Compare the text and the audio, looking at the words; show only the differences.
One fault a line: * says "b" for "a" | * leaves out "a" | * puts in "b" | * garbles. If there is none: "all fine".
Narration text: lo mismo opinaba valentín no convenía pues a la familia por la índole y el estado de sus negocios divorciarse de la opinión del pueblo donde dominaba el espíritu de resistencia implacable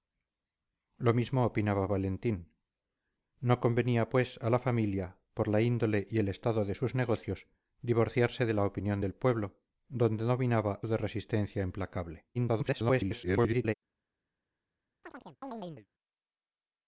* leaves out "el espíritu"
* garbles